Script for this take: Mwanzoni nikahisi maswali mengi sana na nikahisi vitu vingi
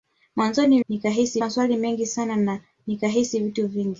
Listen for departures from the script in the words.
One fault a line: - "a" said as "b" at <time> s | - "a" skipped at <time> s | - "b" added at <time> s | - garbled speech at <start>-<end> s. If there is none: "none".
none